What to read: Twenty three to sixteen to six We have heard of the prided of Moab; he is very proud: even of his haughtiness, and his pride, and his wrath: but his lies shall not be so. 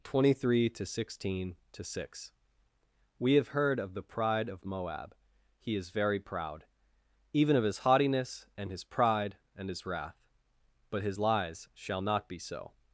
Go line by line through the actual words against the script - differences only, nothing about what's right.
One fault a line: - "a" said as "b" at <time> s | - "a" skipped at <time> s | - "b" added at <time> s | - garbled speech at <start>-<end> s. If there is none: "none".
- "prided" said as "pride" at 4.0 s